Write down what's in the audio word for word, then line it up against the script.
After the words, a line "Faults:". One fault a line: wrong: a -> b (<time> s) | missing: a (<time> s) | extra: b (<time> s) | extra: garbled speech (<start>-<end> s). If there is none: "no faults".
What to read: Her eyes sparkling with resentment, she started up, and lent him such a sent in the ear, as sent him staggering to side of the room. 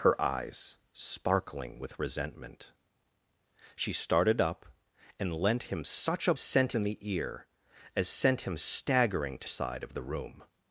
Her eyes sparkling with resentment, she started up, and lent him such a sent in the ear, as sent him staggering to side of the room.
Faults:
no faults